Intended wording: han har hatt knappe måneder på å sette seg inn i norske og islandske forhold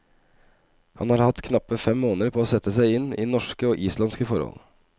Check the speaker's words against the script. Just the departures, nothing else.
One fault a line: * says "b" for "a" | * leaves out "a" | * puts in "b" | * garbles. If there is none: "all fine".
* puts in "fem"